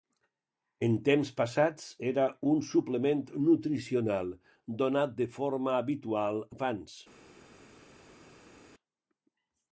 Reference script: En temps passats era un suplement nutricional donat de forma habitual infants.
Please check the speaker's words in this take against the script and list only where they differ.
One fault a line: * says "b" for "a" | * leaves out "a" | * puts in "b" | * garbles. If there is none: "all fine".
all fine